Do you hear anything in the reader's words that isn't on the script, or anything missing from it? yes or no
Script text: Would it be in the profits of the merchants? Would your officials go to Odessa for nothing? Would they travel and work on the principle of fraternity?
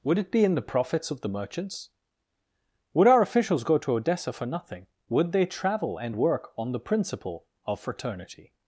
yes